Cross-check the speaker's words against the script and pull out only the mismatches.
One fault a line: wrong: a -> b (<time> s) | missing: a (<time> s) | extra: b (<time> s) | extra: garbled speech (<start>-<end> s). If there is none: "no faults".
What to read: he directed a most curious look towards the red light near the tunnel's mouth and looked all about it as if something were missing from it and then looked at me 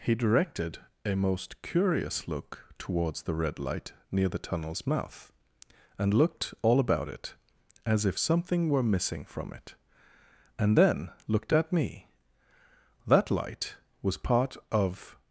extra: that light was part of (13.1 s)